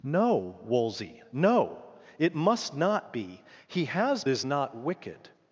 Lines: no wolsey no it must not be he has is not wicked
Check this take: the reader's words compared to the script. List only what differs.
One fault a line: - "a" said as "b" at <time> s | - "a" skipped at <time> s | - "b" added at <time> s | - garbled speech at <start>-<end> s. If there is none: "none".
none